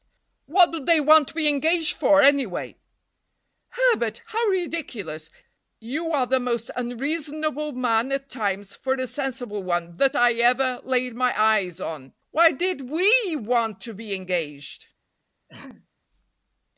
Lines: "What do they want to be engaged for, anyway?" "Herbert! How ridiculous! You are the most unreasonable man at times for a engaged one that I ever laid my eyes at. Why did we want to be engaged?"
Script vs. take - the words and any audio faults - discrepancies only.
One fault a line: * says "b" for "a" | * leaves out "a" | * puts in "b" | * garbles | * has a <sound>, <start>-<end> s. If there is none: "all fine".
* says "sensible" for "engaged"
* says "on" for "at"
* has a throat clearing, 15.5-15.9 s